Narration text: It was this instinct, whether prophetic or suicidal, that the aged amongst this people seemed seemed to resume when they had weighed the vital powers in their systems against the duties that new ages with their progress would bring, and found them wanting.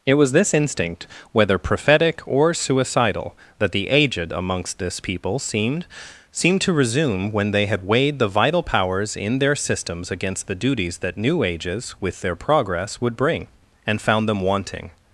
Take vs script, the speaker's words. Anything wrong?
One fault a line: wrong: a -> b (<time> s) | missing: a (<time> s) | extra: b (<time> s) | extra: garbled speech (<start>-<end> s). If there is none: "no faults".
no faults